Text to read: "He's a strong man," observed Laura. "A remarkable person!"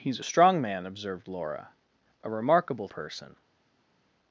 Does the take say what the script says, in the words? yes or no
yes